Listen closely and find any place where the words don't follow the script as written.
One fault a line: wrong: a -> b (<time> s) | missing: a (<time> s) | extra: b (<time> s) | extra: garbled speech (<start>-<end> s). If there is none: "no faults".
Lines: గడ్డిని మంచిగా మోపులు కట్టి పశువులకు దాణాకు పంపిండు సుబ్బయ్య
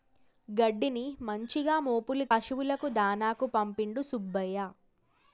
missing: కట్టి (2.2 s)